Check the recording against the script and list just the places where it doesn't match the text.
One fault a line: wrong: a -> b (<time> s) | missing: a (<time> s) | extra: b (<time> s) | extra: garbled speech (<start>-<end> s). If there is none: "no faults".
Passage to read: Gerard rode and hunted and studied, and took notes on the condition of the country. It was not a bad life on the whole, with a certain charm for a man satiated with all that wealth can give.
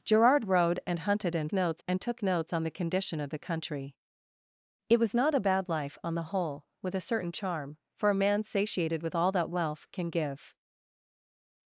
wrong: studied -> notes (1.5 s)